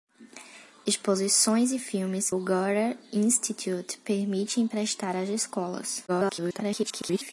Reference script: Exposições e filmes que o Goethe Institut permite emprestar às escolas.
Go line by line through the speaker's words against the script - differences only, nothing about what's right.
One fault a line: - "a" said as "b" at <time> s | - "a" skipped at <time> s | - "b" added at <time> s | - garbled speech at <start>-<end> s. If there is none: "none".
- "que" skipped at 2.3 s
- garbled speech at 6.1-7.3 s